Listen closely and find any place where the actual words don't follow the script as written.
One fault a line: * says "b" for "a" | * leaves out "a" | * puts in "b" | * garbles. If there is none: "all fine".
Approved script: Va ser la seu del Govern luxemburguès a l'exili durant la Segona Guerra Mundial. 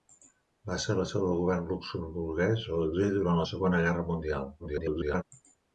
* garbles